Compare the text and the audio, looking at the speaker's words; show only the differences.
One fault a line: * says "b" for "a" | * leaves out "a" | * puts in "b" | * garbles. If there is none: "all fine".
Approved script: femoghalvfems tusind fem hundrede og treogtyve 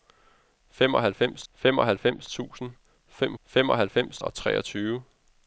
* puts in "femoghalvfems"
* says "femoghalvfems" for "hundrede"